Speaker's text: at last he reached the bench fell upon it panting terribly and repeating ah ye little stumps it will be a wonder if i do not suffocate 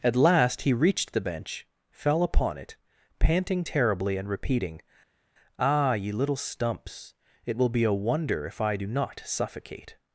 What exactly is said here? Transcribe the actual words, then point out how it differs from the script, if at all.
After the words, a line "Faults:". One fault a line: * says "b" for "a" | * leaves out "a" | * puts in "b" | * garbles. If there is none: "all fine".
at last he reached the bench fell upon it panting terribly and repeating ah ye little stumps it will be a wonder if i do not suffocate
Faults:
all fine